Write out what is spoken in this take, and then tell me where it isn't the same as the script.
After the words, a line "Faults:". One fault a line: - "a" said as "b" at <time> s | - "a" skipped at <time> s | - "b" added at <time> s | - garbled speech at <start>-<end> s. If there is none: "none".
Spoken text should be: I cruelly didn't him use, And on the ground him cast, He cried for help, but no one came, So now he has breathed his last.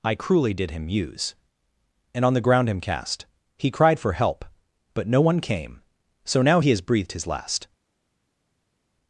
I cruelly did him use, And on the ground him cast, He cried for help, but no one came, So now he has breathed his last.
Faults:
- "didn't" said as "did" at 0.5 s